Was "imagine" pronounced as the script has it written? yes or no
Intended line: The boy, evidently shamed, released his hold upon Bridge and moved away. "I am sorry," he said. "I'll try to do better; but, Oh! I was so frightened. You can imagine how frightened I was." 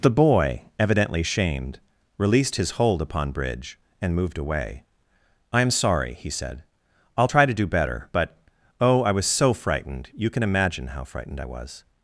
yes